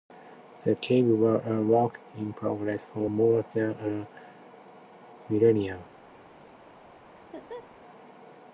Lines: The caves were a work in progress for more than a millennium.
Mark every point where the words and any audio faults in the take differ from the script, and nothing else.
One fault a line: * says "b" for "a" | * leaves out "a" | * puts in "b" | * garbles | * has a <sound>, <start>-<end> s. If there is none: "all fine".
* has a laugh, 7.1-7.8 s